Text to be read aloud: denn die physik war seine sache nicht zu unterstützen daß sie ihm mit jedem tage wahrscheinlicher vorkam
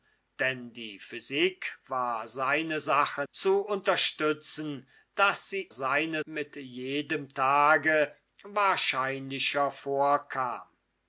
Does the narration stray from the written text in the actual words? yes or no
yes